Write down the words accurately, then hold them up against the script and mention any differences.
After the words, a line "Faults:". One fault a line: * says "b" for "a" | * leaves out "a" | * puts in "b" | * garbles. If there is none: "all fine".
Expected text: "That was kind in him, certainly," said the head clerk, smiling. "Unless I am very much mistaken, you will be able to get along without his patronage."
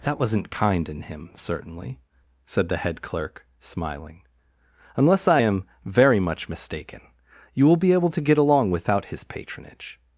"That wasn't kind in him, certainly," said the head clerk, smiling. "Unless I am very much mistaken, you will be able to get along without his patronage."
Faults:
* says "wasn't" for "was"